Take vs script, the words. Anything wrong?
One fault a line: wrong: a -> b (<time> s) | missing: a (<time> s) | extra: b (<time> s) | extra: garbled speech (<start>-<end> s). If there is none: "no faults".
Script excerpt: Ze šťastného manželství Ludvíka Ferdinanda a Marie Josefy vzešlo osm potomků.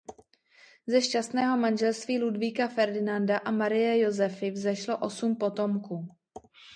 no faults